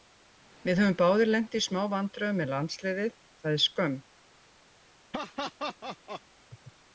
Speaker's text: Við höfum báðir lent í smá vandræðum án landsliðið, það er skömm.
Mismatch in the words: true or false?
true